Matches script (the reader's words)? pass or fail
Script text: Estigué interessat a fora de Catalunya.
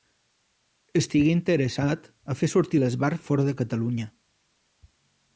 fail